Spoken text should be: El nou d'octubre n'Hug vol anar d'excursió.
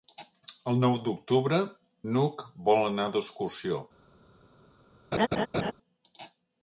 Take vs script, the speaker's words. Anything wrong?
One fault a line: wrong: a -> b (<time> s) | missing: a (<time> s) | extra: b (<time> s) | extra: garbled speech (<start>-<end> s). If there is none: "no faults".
no faults